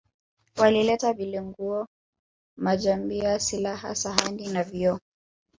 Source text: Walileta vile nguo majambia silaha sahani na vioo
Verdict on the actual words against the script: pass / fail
pass